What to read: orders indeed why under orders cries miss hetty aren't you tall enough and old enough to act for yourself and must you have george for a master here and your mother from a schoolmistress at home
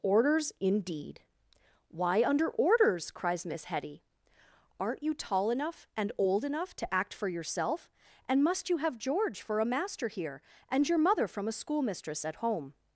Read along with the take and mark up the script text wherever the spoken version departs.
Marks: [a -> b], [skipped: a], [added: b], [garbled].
orders indeed why under orders cries miss hetty aren't you tall enough and old enough to act for yourself and must you have george for a master here and your mother from a schoolmistress at home